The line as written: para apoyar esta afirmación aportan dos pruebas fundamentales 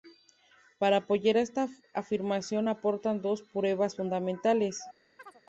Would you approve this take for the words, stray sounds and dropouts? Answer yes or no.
no